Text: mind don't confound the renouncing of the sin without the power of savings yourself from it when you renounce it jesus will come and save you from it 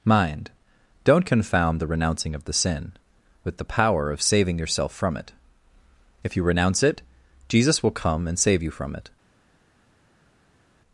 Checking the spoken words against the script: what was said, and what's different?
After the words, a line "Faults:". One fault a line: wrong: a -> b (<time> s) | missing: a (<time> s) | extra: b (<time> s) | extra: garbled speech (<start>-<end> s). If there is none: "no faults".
mind don't confound the renouncing of the sin with the power of saving yourself from it if you renounce it jesus will come and save you from it
Faults:
wrong: without -> with (3.4 s)
wrong: savings -> saving (4.2 s)
wrong: when -> if (6.2 s)